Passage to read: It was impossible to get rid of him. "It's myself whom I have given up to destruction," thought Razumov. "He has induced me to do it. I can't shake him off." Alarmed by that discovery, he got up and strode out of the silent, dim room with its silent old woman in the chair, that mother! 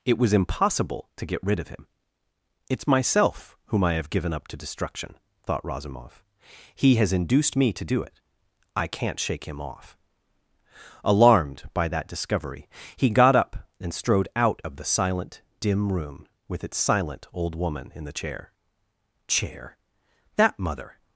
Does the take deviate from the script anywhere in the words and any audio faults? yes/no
yes